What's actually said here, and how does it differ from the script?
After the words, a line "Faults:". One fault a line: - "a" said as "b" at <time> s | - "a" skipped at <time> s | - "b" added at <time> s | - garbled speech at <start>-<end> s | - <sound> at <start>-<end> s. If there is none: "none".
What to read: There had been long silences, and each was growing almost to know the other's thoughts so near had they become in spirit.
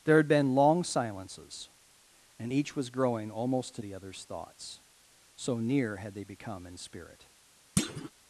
There had been long silences, and each was growing almost to the other's thoughts so near had they become in spirit.
Faults:
- "know" skipped at 3.8 s
- thud at 7.8-8.1 s